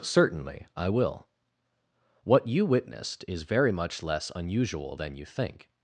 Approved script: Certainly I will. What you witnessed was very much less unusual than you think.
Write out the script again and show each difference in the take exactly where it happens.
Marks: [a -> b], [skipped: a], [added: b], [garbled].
Certainly I will. What you witnessed [was -> is] very much less unusual than you think.